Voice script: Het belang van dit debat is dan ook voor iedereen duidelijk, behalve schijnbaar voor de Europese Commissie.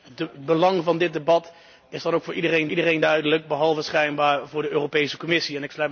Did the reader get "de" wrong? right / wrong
right